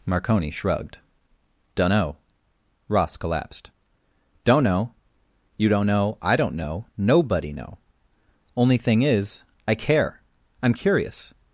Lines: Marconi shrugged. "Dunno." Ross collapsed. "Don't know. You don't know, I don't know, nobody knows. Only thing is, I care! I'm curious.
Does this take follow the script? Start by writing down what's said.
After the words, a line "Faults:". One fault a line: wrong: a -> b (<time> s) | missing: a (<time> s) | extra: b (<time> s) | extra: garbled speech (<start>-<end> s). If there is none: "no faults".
Marconi shrugged. "Dunno." Ross collapsed. "Don't know. You don't know, I don't know, nobody know. Only thing is, I care! I'm curious.
Faults:
wrong: knows -> know (7.5 s)